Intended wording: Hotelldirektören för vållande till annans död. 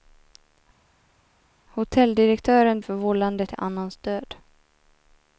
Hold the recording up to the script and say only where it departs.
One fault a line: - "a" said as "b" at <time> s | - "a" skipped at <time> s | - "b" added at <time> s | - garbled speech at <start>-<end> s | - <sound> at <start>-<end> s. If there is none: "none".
none